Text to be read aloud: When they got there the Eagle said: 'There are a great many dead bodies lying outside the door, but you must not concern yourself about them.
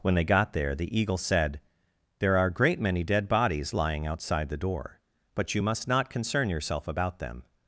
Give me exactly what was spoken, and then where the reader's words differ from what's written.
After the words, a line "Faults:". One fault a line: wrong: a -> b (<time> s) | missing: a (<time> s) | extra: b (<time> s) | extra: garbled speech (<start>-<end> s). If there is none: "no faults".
When they got there the Eagle said: 'There are a great many dead bodies lying outside the door, but you must not concern yourself about them.
Faults:
no faults